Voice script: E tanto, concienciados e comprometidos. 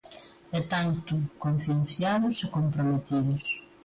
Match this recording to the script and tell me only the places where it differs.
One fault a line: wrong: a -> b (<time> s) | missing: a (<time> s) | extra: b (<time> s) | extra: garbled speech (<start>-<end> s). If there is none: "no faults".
no faults